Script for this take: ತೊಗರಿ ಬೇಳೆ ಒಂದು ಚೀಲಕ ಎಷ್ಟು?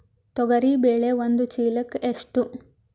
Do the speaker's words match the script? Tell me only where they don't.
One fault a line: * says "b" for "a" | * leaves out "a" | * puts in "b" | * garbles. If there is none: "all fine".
all fine